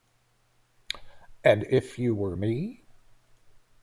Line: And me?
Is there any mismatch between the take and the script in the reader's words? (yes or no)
yes